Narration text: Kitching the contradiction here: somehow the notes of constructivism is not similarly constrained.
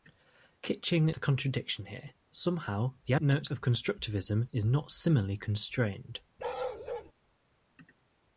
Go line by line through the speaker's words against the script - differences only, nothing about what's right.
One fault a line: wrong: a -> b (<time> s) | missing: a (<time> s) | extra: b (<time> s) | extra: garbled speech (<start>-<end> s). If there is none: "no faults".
no faults